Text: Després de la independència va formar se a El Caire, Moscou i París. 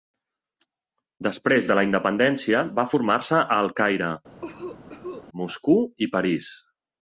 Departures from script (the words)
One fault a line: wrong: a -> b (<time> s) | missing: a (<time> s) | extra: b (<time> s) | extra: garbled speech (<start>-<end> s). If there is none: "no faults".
no faults